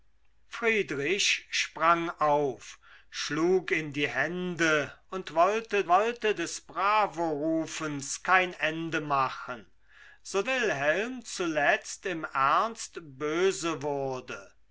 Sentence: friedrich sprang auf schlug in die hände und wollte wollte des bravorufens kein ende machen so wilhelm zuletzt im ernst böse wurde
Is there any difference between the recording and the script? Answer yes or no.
no